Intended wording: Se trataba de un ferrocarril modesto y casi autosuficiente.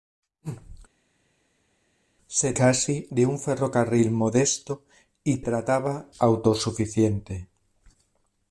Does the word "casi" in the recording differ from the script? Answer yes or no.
yes